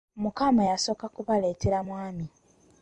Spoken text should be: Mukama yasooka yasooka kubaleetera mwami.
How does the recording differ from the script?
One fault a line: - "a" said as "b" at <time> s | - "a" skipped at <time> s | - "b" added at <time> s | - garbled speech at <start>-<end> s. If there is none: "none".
- "yasooka" skipped at 1.1 s